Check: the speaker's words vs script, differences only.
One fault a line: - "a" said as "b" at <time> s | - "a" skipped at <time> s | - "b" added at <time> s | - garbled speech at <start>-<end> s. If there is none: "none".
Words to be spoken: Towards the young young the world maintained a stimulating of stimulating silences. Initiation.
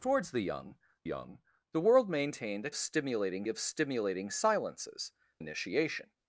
none